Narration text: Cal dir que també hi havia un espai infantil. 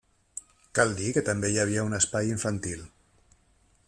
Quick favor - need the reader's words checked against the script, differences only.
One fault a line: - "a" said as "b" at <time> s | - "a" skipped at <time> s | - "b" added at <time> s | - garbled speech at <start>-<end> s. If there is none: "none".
none